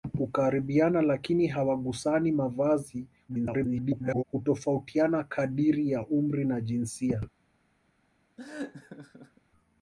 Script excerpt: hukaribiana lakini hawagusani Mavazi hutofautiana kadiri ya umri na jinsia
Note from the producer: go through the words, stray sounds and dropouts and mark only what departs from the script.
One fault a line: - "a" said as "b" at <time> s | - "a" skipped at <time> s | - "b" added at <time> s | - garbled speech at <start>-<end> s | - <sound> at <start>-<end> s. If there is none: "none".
- garbled speech at 3.3-4.2 s
- laugh at 8.4-9.4 s